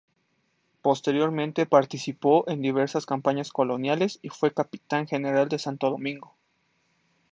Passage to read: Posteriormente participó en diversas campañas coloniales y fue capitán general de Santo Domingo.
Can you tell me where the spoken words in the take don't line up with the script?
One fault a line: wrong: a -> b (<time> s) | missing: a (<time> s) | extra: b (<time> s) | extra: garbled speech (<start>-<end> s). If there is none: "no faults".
no faults